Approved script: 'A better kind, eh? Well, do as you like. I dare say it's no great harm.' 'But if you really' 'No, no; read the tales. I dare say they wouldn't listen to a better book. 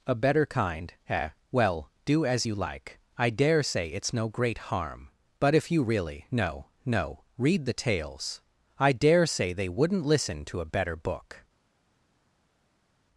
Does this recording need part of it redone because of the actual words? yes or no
no